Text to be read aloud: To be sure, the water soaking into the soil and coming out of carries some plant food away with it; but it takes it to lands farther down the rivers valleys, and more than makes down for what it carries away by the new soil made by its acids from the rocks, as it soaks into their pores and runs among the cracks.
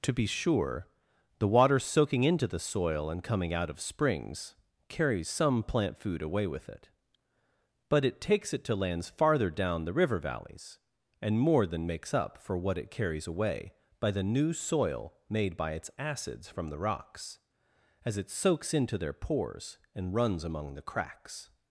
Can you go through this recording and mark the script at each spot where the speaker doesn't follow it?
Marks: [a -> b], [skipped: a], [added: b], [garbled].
To be sure, the water soaking into the soil and coming out of [added: springs] carries some plant food away with it; but it takes it to lands farther down the [rivers -> river] valleys, and more than makes [down -> up] for what it carries away by the new soil made by its acids from the rocks, as it soaks into their pores and runs among the cracks.